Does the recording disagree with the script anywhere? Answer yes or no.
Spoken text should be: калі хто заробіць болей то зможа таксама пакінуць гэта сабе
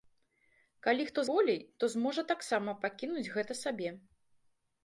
yes